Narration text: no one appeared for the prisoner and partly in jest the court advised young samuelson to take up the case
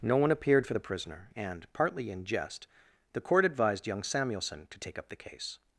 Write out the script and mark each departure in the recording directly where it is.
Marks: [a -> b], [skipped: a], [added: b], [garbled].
no one appeared for the prisoner and partly in jest the court advised young samuelson to take up the case